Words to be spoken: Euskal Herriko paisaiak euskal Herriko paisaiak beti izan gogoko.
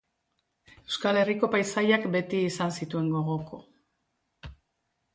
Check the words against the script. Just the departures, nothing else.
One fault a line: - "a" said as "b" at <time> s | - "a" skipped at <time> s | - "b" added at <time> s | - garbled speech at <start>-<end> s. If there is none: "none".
- "euskal Herriko paisaiak" skipped at 2.1 s
- "zituen" added at 2.8 s